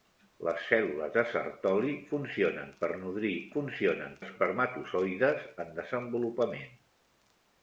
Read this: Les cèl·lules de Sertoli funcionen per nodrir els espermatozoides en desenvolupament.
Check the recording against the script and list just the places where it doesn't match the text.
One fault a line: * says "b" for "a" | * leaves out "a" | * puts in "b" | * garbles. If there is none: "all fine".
* says "funcionen" for "els"